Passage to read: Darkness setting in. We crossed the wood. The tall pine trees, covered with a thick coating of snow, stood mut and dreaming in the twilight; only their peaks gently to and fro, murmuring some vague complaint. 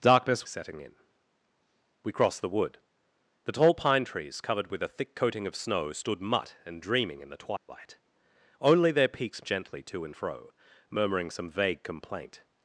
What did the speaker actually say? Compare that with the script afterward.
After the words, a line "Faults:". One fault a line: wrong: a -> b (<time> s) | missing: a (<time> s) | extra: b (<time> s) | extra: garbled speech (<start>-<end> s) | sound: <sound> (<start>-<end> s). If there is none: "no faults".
Darkness setting in. We crossed the wood. The tall pine trees, covered with a thick coating of snow, stood mut and dreaming in the twilight; only their peaks gently to and fro, murmuring some vague complaint.
Faults:
sound: dropout (7.6-7.7 s)